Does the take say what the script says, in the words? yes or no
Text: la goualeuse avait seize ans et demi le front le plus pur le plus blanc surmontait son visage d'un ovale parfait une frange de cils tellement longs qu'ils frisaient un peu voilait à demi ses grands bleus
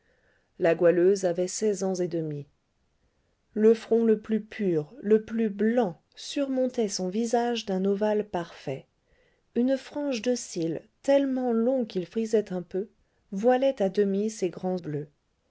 yes